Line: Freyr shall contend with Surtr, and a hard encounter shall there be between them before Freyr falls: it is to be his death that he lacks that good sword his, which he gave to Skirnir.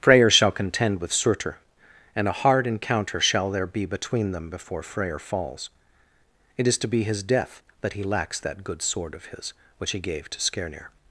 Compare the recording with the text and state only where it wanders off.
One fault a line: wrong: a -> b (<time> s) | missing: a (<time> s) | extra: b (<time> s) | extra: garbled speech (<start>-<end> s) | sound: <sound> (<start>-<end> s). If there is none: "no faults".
extra: of (9.1 s)